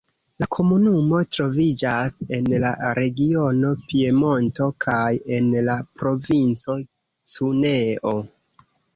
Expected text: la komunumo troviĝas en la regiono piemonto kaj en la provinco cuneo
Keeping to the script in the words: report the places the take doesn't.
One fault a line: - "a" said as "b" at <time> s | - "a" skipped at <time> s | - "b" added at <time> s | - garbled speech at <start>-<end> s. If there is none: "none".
none